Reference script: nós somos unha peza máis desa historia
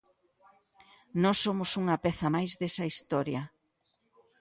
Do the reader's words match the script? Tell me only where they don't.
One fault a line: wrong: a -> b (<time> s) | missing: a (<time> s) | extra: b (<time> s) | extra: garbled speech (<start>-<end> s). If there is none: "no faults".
no faults